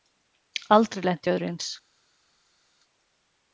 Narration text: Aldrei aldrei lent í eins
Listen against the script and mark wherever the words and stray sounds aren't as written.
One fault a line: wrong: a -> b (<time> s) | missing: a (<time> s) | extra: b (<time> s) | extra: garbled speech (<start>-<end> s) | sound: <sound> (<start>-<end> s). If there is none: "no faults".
missing: aldrei (1.1 s)
extra: öðru (1.4 s)